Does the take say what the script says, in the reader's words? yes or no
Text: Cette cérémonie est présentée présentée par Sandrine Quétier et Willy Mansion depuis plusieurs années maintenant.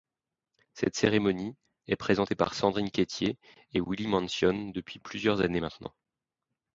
no